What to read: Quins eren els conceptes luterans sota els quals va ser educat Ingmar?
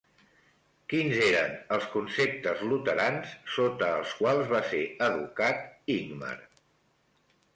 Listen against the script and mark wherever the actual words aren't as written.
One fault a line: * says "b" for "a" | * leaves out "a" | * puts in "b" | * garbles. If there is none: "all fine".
all fine